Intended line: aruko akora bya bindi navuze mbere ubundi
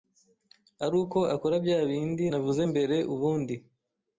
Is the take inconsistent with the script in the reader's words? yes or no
no